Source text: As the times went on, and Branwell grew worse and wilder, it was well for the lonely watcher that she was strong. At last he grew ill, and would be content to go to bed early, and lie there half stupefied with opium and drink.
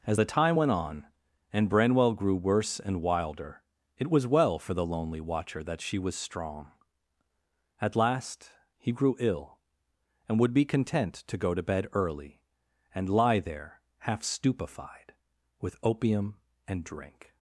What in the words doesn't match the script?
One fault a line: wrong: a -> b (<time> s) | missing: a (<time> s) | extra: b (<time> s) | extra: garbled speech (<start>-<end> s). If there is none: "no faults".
wrong: times -> time (0.2 s)